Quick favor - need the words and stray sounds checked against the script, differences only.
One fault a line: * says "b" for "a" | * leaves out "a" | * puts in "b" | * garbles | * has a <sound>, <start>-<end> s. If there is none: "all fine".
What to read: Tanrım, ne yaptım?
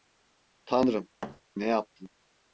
* has a thud, 1.2-1.4 s